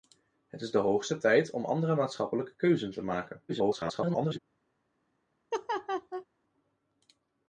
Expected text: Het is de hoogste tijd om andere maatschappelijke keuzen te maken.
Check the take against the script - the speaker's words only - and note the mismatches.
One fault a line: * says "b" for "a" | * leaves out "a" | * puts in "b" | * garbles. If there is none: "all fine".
* garbles